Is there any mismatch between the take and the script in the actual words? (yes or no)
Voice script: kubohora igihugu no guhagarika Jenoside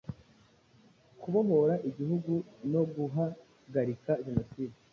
no